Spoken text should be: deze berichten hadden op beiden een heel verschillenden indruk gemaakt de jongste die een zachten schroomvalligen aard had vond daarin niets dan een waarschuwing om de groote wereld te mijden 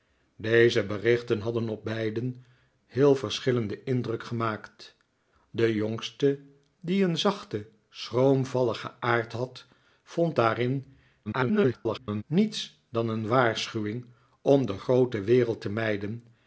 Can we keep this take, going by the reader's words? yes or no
no